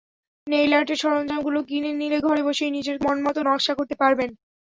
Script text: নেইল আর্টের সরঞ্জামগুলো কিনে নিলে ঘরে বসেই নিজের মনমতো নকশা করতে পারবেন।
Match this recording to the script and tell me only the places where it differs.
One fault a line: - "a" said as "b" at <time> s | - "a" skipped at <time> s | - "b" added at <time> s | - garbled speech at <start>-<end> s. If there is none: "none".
none